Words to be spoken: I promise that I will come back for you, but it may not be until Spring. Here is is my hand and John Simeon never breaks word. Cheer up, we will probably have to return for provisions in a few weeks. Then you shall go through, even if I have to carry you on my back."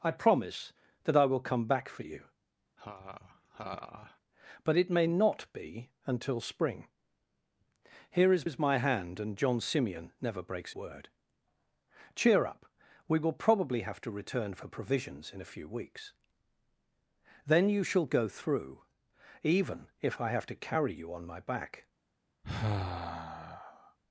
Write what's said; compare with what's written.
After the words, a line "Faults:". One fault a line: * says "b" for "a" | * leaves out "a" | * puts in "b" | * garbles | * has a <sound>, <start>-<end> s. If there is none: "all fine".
I promise that I will come back for you, but it may not be until Spring. Here is is my hand and John Simeon never breaks word. Cheer up, we will probably have to return for provisions in a few weeks. Then you shall go through, even if I have to carry you on my back."
Faults:
* has a laugh, 2.8-4.2 s
* has a sigh, 22.4-24.0 s